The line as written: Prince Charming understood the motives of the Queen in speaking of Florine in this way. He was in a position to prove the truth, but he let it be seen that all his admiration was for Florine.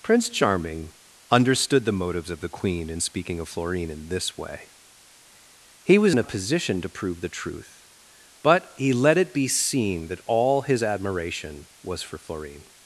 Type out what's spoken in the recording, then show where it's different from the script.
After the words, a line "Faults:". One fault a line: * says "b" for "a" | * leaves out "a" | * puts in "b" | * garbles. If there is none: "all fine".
Prince Charming understood the motives of the Queen in speaking of Florine in this way. He was in a position to prove the truth, but he let it be seen that all his admiration was for Florine.
Faults:
all fine